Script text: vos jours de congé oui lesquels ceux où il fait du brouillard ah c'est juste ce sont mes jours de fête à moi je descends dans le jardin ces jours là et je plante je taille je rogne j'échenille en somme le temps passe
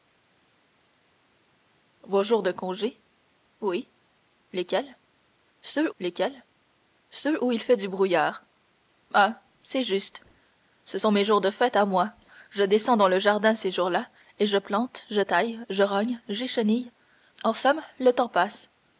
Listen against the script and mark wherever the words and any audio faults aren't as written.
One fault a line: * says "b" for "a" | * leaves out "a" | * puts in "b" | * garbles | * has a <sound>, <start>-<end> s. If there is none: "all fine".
* puts in "lesquels ceux"